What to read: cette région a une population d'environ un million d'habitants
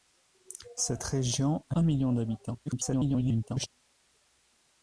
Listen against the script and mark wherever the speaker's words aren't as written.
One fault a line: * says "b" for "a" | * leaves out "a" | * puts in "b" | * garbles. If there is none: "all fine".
* leaves out "une population d'environ"
* garbles